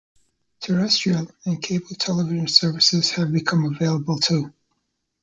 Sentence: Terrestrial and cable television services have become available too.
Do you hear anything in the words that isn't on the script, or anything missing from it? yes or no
no